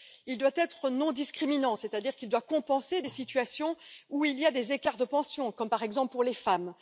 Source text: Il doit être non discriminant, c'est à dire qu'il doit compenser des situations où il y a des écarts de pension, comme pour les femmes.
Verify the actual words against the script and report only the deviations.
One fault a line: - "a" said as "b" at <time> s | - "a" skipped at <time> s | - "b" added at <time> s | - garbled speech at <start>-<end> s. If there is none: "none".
- "par exemple" added at 5.7 s